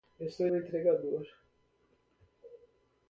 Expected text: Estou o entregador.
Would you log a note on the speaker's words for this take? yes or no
no